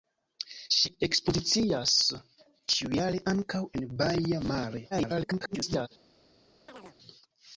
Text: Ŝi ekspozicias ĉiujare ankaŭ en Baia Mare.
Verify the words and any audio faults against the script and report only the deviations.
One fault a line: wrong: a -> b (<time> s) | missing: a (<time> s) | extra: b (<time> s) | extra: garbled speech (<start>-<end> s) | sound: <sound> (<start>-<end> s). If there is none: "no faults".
extra: garbled speech (4.9-5.9 s)
sound: chirp (6.7-7.0 s)